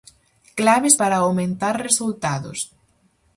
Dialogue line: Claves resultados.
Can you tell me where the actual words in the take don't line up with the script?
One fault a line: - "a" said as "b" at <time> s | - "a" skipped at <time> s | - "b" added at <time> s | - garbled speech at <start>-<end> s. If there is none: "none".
- "para aumentar" added at 0.9 s